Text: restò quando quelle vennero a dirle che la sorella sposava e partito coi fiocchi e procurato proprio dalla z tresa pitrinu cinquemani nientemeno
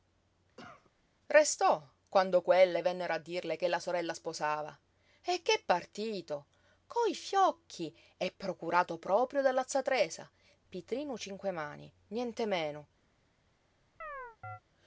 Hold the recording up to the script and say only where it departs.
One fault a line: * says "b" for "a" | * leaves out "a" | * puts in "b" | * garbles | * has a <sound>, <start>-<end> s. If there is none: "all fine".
* has a cough, 0.6-0.9 s
* puts in "che"
* has a chirp, 14.0-14.6 s